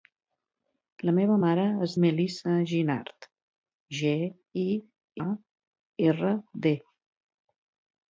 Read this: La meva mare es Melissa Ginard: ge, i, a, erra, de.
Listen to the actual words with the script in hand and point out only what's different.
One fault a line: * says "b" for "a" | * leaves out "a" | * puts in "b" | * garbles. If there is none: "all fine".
all fine